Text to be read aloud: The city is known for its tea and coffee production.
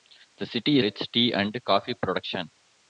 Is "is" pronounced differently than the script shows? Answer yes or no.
yes